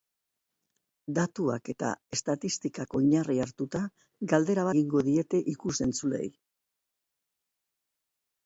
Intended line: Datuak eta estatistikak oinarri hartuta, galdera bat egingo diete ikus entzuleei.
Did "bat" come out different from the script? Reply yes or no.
yes